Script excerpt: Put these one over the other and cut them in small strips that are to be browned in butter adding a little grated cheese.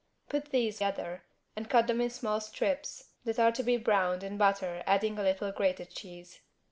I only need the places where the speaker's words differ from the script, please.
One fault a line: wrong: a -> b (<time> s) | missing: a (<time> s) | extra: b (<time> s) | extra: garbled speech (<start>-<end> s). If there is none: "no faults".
missing: one over the (0.8 s)